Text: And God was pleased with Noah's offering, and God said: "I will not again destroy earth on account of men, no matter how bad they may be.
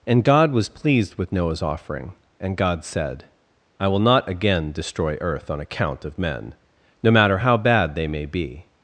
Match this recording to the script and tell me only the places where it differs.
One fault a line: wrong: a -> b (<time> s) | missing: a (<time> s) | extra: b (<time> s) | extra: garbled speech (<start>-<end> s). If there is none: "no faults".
no faults